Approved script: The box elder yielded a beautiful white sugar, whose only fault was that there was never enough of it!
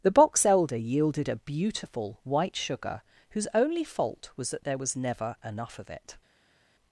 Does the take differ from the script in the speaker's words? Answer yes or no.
no